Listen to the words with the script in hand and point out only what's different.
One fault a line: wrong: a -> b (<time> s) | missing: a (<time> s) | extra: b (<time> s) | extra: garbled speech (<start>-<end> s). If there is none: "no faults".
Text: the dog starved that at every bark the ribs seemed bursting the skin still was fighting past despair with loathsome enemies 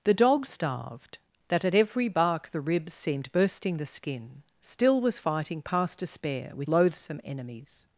no faults